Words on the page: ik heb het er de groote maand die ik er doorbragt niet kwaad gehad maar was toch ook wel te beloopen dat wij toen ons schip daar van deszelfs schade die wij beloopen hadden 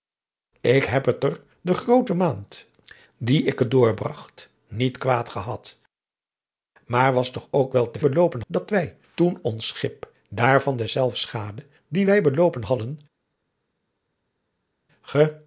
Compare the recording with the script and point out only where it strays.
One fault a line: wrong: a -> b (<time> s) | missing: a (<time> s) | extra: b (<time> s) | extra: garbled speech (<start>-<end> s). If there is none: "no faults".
no faults